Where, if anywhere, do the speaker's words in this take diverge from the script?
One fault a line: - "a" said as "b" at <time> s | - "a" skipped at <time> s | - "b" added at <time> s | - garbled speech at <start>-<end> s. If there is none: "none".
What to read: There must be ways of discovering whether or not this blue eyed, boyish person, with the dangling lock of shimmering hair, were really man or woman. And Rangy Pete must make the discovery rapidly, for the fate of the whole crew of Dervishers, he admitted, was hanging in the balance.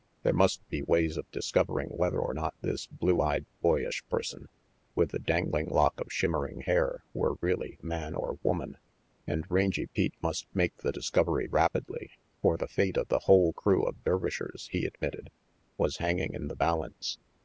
none